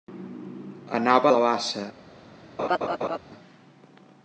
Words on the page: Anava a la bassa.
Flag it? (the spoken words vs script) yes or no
no